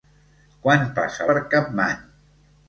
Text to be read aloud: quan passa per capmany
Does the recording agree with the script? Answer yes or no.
yes